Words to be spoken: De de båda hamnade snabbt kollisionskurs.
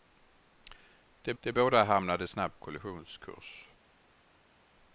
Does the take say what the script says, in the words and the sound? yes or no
yes